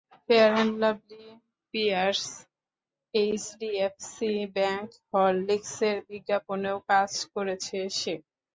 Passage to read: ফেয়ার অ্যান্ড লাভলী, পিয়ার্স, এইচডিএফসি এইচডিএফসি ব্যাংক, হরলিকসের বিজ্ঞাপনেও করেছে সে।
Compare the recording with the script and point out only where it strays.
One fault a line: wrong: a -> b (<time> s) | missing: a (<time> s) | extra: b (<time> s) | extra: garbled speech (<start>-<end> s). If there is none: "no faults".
missing: এইচডিএফসি (4.3 s)
extra: কাজ (6.9 s)